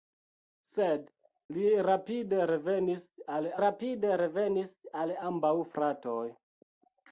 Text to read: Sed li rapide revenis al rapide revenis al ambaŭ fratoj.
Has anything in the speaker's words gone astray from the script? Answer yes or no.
no